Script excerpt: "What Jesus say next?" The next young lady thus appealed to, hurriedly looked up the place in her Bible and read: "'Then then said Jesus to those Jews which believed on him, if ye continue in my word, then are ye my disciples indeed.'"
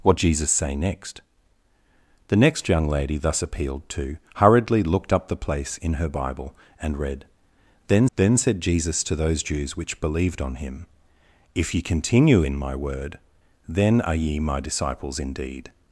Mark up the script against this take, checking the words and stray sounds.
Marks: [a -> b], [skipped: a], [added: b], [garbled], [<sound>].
"What Jesus say next?" The next young lady thus appealed to, hurriedly looked up the place in her Bible and read: "'Then then said Jesus to those Jews which believed on him, if ye continue in my word, then are ye my disciples indeed.'"